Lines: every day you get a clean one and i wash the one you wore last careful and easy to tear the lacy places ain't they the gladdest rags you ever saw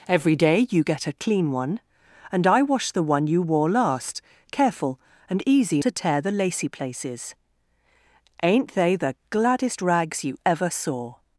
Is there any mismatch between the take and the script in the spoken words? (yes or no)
no